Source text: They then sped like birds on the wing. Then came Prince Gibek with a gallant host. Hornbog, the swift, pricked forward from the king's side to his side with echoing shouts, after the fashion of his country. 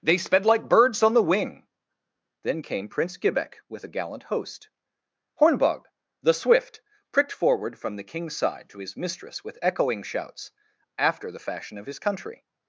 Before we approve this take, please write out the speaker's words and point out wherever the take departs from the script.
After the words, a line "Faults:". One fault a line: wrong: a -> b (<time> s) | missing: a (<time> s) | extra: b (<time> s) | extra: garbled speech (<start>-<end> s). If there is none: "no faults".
They sped like birds on the wing. Then came Prince Gibek with a gallant host. Hornbog, the swift, pricked forward from the king's side to his mistress with echoing shouts, after the fashion of his country.
Faults:
missing: then (0.2 s)
wrong: side -> mistress (9.0 s)